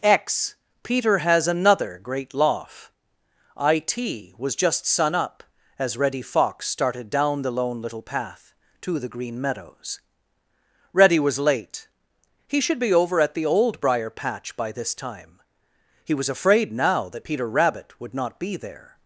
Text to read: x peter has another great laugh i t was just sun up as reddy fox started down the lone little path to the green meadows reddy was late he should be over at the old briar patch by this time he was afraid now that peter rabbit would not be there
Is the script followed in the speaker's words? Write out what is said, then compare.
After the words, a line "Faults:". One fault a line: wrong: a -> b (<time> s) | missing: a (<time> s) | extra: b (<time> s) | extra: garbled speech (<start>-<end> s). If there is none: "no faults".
x peter has another great laugh i t was just sun up as reddy fox started down the lone little path to the green meadows reddy was late he should be over at the old briar patch by this time he was afraid now that peter rabbit would not be there
Faults:
no faults